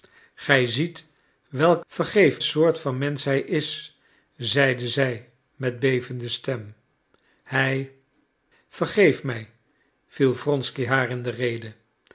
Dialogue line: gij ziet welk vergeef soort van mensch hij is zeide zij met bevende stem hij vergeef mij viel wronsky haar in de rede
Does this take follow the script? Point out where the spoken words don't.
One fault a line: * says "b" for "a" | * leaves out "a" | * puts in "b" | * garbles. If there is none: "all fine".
all fine